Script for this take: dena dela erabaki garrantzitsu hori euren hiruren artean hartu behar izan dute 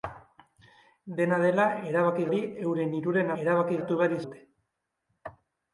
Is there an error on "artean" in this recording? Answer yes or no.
yes